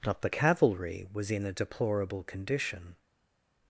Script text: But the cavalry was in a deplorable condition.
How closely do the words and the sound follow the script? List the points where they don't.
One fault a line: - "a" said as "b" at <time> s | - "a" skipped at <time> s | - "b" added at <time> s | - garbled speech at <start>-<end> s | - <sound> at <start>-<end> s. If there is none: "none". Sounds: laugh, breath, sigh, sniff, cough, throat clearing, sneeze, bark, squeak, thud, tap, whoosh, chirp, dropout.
- "But" said as "Not" at 0.1 s